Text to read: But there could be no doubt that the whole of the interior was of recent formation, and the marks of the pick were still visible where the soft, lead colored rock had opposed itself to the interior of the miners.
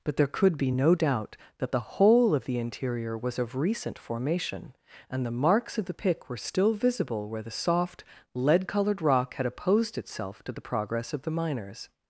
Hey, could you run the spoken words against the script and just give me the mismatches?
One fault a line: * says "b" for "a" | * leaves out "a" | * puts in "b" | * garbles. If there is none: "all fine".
* says "progress" for "interior"